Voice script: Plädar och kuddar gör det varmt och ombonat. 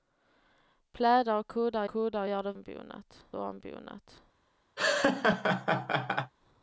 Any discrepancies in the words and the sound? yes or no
yes